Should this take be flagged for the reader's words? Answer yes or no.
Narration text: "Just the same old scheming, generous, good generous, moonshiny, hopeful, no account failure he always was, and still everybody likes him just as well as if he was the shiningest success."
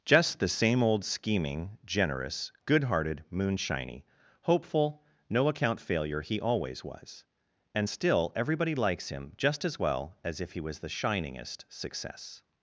yes